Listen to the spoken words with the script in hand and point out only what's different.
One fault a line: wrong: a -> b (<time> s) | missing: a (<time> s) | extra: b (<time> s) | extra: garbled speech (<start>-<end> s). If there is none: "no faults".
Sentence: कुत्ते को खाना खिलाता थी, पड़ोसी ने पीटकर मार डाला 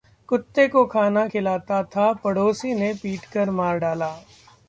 wrong: थी -> था (1.9 s)